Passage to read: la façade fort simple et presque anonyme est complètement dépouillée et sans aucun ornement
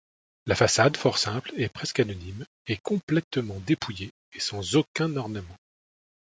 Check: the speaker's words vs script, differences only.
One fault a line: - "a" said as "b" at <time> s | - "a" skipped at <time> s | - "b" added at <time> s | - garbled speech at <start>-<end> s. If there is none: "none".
none